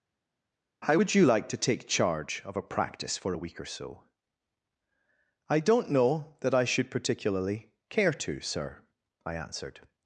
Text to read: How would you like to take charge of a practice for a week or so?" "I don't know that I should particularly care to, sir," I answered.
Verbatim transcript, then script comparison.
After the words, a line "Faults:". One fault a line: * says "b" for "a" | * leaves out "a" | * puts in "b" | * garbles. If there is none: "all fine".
How would you like to take charge of a practice for a week or so?" "I don't know that I should particularly care to, sir," I answered.
Faults:
all fine